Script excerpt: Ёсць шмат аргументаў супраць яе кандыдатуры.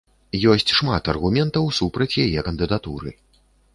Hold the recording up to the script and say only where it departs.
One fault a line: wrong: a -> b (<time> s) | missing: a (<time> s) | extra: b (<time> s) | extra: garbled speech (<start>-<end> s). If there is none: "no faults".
no faults